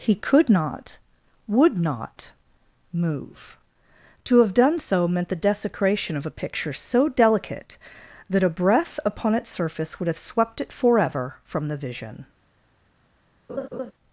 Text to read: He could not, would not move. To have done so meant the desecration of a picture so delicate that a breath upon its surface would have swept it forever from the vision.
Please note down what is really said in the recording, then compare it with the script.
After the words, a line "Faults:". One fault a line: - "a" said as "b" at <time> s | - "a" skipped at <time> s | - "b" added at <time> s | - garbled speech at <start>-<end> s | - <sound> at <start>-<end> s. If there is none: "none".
He could not, would not move. To have done so meant the desecration of a picture so delicate that a breath upon its surface would have swept it forever from the vision.
Faults:
- laugh at 13.5-13.9 s